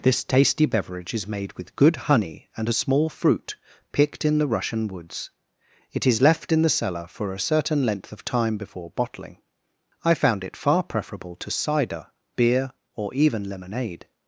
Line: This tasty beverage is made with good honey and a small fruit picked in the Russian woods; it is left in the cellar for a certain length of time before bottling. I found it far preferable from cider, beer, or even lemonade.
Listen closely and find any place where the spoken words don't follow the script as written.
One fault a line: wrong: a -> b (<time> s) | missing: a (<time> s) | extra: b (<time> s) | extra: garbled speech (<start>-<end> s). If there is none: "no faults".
wrong: from -> to (11.4 s)